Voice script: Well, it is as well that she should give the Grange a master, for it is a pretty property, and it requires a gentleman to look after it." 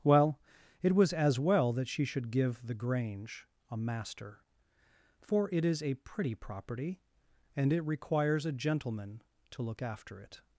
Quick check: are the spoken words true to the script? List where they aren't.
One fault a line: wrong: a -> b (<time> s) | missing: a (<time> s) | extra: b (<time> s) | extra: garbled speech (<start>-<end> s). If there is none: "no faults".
wrong: is -> was (0.9 s)